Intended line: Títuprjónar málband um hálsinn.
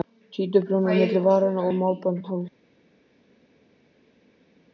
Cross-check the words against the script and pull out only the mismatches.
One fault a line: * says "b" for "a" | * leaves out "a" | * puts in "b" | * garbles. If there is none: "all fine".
* puts in "milli varanna og"